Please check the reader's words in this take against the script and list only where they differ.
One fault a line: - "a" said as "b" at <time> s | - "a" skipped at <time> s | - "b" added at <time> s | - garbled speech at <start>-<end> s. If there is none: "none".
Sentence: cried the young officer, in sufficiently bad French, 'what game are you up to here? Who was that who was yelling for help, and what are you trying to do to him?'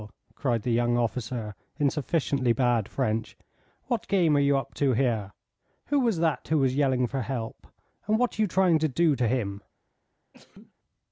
none